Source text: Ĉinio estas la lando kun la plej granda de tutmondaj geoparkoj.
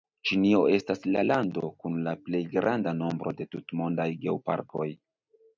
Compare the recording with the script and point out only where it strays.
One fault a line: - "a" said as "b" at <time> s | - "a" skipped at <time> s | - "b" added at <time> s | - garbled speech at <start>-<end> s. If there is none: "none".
- "nombro" added at 3.0 s